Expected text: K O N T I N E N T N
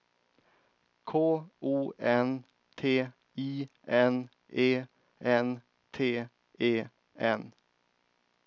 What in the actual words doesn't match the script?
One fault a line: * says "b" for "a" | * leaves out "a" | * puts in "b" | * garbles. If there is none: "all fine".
* puts in "E"